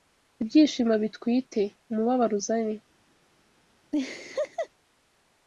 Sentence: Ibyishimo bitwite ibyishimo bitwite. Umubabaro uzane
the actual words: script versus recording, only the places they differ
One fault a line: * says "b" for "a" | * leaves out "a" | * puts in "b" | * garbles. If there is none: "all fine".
* leaves out "ibyishimo bitwite"